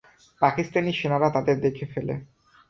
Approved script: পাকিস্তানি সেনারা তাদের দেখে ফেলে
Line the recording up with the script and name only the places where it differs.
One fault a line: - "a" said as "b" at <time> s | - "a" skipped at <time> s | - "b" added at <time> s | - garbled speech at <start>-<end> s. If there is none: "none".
none